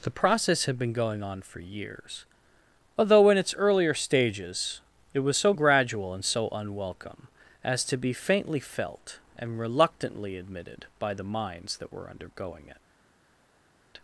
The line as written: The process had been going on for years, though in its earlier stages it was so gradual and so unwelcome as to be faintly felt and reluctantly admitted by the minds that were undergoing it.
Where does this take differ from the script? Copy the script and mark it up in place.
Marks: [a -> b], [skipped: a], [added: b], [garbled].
The process had been going on for years, [though -> although] in its earlier stages it was so gradual and so unwelcome as to be faintly felt and reluctantly admitted by the minds that were undergoing it.